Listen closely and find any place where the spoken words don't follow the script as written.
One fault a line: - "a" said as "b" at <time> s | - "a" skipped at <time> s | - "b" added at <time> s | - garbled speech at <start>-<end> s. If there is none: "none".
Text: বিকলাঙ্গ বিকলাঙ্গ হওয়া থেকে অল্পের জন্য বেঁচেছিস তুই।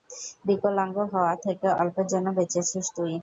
- "বিকলাঙ্গ" skipped at 1.0 s